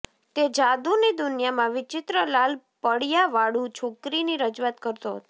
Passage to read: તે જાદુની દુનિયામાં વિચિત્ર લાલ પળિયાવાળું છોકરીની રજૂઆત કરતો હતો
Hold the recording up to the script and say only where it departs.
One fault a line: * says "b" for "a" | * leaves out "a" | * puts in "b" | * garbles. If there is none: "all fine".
all fine